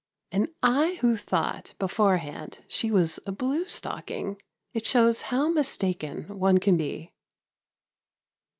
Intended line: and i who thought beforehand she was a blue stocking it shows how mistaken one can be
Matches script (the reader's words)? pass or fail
pass